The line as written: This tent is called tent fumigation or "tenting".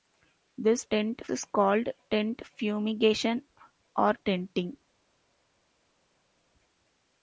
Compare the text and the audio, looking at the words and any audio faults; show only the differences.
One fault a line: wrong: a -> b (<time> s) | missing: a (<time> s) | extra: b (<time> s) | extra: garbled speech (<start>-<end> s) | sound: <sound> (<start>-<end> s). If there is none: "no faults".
no faults